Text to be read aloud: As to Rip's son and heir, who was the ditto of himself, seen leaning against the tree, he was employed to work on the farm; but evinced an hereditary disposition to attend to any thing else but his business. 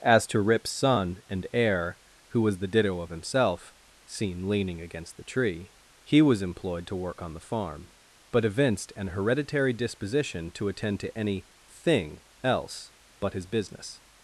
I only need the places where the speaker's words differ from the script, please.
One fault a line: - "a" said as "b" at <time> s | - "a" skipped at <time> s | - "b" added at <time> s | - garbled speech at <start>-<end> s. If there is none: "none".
none